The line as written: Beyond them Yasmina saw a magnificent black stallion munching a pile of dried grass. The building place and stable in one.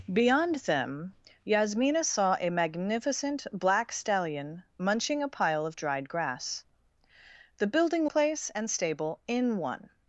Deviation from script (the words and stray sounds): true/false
false